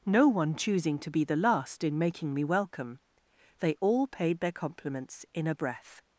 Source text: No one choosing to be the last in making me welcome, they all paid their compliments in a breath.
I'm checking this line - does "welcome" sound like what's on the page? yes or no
yes